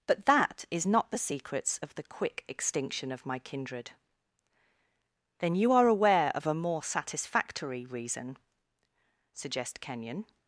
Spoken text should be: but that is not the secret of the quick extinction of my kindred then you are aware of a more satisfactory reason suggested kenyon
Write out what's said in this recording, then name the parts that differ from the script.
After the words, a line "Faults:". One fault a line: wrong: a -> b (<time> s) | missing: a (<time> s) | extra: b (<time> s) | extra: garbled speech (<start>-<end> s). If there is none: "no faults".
but that is not the secrets of the quick extinction of my kindred then you are aware of a more satisfactory reason suggest kenyon
Faults:
wrong: secret -> secrets (1.2 s)
wrong: suggested -> suggest (9.3 s)